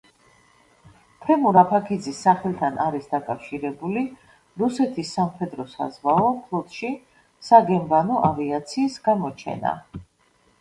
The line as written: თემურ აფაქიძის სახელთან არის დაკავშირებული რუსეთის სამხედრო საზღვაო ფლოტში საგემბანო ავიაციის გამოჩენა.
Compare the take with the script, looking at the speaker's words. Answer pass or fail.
pass